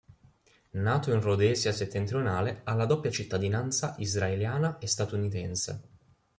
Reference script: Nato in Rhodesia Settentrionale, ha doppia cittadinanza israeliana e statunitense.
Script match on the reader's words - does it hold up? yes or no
no